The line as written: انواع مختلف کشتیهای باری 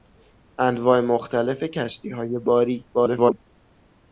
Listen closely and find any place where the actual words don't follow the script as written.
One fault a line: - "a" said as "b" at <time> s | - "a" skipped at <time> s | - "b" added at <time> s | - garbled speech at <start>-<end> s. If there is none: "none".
- garbled speech at 2.9-3.4 s